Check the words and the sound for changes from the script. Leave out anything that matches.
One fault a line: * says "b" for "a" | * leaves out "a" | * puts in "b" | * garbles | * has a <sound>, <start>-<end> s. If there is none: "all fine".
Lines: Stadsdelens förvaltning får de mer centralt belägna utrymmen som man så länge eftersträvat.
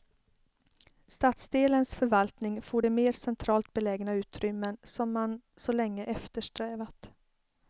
all fine